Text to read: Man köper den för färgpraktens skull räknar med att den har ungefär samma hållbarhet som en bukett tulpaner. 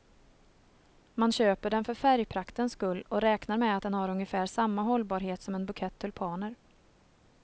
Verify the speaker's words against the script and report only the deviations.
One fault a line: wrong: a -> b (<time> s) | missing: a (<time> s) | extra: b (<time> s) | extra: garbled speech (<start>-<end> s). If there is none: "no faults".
extra: och (3.1 s)